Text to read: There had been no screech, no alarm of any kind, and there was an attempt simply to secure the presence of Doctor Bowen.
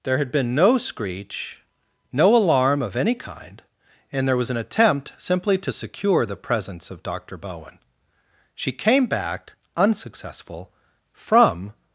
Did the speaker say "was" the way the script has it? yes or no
yes